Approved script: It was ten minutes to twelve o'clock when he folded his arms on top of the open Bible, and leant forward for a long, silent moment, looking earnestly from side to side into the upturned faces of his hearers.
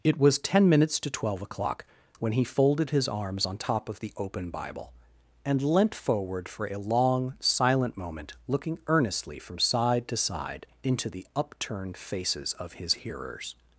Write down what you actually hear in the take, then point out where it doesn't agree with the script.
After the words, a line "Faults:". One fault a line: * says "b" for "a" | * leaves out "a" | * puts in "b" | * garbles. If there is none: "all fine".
It was ten minutes to twelve o'clock when he folded his arms on top of the open Bible, and leant forward for a long, silent moment, looking earnestly from side to side into the upturned faces of his hearers.
Faults:
all fine